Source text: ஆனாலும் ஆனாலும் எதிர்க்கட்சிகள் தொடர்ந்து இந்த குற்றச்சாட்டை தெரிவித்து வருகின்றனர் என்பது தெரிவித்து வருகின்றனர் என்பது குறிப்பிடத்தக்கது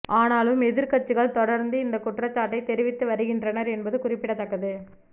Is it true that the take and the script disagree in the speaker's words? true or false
true